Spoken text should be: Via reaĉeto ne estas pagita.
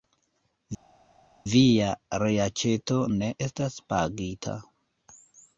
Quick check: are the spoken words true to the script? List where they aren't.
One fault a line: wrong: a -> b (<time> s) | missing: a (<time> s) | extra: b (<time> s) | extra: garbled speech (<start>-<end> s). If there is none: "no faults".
no faults